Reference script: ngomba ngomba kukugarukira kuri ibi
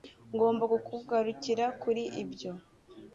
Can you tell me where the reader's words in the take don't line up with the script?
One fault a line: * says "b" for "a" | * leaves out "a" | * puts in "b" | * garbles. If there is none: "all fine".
* leaves out "ngomba"
* says "ibyo" for "ibi"